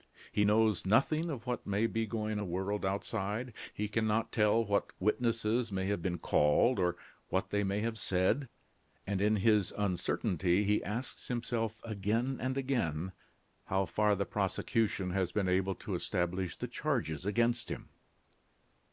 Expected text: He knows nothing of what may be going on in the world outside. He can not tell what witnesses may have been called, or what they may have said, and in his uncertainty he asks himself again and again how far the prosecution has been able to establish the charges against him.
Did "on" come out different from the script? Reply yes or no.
yes